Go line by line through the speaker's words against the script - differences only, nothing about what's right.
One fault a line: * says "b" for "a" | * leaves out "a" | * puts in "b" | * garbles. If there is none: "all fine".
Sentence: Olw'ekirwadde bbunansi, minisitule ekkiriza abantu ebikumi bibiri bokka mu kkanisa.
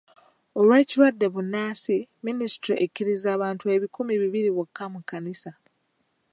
all fine